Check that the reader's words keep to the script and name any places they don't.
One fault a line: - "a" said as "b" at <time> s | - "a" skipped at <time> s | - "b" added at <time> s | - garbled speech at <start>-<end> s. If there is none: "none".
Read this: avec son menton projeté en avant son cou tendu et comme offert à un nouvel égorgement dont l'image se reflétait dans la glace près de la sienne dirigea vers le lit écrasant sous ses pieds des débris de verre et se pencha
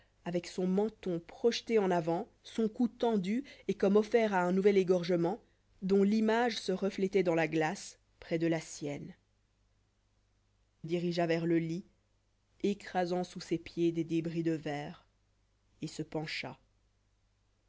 none